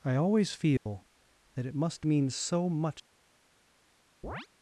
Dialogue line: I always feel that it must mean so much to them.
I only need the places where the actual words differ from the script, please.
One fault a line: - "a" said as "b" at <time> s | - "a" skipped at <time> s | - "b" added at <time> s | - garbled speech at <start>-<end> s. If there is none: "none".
- "to them" skipped at 2.9 s